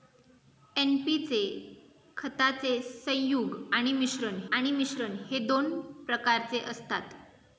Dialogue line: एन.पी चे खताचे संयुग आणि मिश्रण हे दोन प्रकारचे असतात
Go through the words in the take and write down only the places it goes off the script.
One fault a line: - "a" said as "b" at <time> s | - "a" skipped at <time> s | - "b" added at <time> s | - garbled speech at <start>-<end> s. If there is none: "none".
- "आणि मिश्रण" added at 4.5 s